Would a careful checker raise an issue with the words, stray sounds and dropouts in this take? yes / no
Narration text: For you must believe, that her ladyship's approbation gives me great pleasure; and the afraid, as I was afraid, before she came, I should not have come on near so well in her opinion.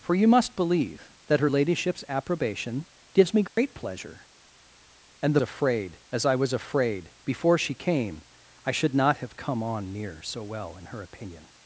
yes